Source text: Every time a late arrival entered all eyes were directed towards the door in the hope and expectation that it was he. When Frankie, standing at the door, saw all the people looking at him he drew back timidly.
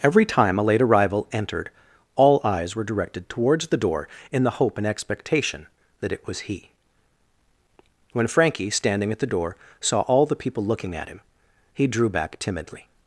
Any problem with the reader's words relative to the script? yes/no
no